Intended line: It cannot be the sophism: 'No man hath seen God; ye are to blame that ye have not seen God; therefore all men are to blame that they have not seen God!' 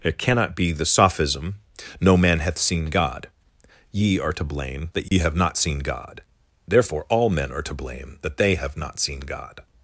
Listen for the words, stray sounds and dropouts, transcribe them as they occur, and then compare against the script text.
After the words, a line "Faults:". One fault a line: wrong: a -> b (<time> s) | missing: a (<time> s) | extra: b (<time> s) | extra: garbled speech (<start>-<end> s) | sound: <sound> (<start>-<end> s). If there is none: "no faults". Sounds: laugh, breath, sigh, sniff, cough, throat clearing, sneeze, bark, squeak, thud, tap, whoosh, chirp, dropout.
It cannot be the sophism: 'No man hath seen God; ye are to blame that ye have not seen God; therefore all men are to blame that they have not seen God!'
Faults:
sound: dropout (5.1-5.1 s)